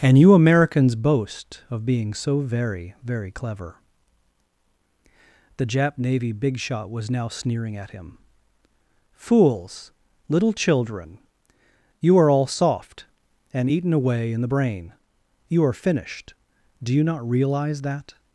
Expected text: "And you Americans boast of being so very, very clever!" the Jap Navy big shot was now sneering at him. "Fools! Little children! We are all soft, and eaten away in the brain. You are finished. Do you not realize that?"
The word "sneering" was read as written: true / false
true